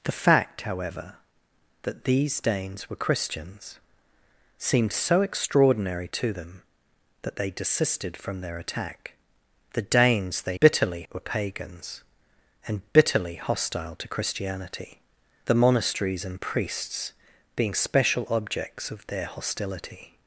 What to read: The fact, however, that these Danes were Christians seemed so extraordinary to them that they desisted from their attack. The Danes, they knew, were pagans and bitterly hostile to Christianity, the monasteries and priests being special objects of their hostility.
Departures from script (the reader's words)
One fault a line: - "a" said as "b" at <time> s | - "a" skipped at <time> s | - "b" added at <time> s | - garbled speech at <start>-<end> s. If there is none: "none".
- "knew" said as "bitterly" at 10.6 s